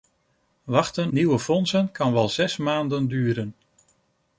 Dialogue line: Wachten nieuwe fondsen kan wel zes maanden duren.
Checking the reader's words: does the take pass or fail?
pass